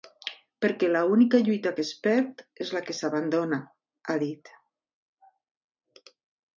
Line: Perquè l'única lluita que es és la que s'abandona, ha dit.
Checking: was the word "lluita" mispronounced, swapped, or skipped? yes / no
no